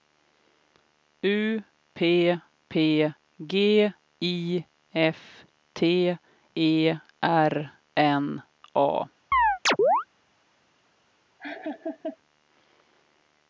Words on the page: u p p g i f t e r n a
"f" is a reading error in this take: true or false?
false